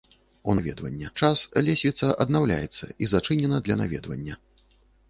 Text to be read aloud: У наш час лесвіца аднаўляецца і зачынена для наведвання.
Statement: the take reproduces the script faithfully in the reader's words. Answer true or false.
false